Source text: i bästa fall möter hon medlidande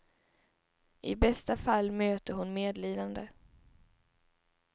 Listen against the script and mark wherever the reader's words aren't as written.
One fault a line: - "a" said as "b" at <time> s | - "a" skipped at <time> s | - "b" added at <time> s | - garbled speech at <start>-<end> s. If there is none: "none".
none